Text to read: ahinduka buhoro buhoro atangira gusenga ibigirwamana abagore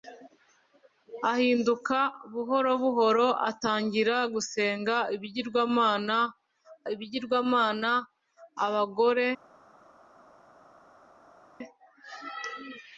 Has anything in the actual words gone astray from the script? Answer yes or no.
yes